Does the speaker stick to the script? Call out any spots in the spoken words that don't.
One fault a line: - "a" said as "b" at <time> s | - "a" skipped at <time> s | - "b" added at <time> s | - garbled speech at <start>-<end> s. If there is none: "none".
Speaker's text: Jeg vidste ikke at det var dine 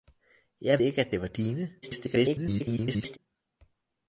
- "vidste" skipped at 0.8 s
- garbled speech at 1.8-3.2 s